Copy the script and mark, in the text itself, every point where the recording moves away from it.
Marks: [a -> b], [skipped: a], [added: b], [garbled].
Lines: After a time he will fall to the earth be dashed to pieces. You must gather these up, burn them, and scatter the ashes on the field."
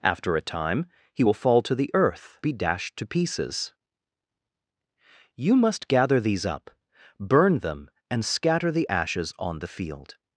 After a time he will fall to the earth be dashed to pieces. You must gather these up, burn them, and scatter the ashes on the field."